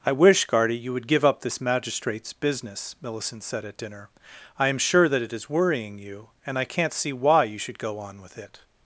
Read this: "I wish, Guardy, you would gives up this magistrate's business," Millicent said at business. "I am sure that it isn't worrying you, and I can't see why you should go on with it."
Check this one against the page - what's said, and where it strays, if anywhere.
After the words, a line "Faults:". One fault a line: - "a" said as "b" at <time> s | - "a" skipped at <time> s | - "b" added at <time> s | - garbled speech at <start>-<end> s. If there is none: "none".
"I wish, Guardy, you would give up this magistrate's business," Millicent said at dinner. "I am sure that it is worrying you, and I can't see why you should go on with it."
Faults:
- "gives" said as "give" at 1.1 s
- "business" said as "dinner" at 3.8 s
- "isn't" said as "is" at 5.3 s